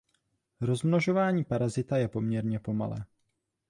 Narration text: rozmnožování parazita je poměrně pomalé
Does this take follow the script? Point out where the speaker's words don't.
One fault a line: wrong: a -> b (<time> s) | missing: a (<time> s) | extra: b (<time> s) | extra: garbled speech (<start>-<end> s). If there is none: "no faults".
no faults